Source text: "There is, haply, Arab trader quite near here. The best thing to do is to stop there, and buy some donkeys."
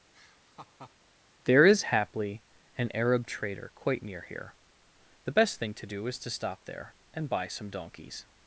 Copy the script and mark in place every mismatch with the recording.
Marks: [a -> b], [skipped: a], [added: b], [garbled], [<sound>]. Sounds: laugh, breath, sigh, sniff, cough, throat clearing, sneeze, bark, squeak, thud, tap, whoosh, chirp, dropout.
[laugh] "There is, haply, [added: an] Arab trader quite near here. The best thing to do is to stop there, and buy some donkeys."